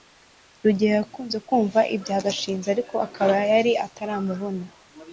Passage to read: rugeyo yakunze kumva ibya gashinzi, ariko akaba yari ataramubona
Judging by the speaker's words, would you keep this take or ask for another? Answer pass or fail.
pass